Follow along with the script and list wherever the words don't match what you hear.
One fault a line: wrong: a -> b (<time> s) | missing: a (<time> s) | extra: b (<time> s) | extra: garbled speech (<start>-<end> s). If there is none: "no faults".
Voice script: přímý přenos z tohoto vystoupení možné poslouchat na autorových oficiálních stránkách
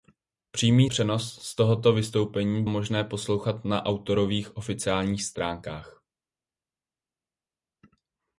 no faults